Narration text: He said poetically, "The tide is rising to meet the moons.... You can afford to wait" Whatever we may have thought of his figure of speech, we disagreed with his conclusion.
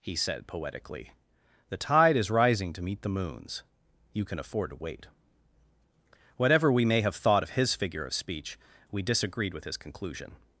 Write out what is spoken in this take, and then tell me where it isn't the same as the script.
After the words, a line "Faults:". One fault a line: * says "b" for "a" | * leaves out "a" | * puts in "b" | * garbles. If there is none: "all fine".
He said poetically, "The tide is rising to meet the moons.... You can afford to wait" Whatever we may have thought of his figure of speech, we disagreed with his conclusion.
Faults:
all fine